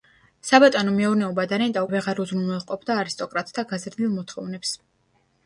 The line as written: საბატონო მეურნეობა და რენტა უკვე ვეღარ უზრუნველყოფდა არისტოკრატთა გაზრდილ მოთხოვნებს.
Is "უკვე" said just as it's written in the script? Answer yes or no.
no